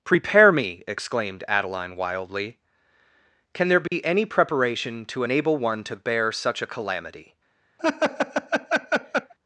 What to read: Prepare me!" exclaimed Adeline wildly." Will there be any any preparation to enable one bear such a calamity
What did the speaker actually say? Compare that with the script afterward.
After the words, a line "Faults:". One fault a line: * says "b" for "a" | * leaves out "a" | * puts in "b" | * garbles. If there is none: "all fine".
Prepare me!" exclaimed Adeline wildly." Can there be any preparation to enable one to bear such a calamity
Faults:
* says "Can" for "Will"
* leaves out "any"
* puts in "to"